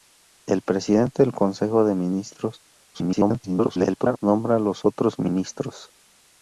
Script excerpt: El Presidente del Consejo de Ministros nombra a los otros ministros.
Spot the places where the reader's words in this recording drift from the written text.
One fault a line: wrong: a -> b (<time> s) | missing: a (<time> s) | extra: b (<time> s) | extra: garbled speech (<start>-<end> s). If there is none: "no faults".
extra: garbled speech (2.9-4.2 s)